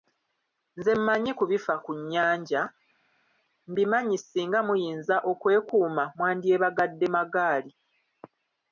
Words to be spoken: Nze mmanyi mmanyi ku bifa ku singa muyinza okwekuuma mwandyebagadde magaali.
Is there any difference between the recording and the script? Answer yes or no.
yes